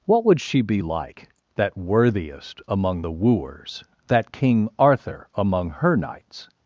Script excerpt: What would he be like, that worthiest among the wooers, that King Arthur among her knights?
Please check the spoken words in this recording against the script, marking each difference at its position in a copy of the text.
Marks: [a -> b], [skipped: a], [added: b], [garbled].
What would [he -> she] be like, that worthiest among the wooers, that King Arthur among her knights?